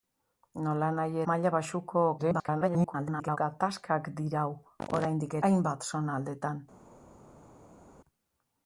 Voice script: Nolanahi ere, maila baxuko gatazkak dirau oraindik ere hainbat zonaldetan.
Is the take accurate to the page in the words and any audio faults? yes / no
no